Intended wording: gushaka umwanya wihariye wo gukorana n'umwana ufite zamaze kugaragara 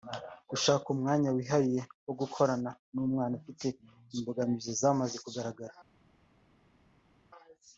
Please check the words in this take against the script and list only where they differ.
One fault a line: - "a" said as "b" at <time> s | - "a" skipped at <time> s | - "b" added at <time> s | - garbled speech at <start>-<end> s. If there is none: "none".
- "imbogamizi" added at 4.2 s